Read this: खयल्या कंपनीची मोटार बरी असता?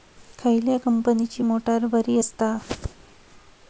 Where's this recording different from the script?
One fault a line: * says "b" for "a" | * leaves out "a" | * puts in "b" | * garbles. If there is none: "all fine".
all fine